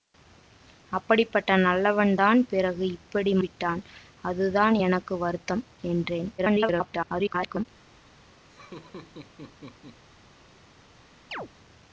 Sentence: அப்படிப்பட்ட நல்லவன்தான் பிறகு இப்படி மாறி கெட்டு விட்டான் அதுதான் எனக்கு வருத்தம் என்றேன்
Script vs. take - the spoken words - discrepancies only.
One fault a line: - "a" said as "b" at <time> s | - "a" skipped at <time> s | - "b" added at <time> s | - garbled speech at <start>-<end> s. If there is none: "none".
- "மாறி கெட்டு" skipped at 3.3 s
- garbled speech at 6.4-7.7 s